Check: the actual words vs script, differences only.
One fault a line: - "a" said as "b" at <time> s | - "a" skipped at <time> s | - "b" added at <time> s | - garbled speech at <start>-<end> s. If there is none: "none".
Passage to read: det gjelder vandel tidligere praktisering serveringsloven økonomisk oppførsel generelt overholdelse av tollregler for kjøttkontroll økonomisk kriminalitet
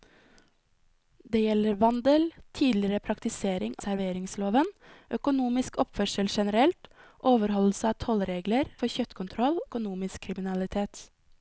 none